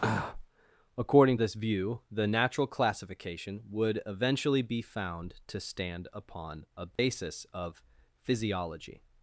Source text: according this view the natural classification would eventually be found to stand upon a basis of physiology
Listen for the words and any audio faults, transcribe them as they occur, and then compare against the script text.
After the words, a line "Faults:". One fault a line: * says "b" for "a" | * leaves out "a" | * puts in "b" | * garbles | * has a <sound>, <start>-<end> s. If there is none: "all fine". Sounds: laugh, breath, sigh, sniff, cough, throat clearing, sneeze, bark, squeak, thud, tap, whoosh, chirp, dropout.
according this view the natural classification would eventually be found to stand upon a basis of physiology
Faults:
* has a dropout, 7.0-7.0 s